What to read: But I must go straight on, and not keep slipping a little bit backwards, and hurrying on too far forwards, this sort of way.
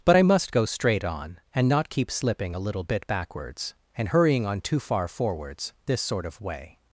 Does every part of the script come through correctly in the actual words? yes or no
yes